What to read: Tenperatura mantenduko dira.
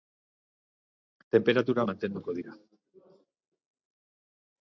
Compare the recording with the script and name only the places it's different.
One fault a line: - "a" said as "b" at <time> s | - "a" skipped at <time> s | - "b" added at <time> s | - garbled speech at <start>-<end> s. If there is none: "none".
none